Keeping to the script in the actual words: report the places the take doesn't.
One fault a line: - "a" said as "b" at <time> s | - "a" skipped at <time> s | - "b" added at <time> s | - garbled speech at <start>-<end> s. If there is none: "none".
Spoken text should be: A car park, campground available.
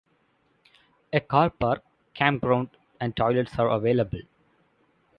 - "and toilets are" added at 3.0 s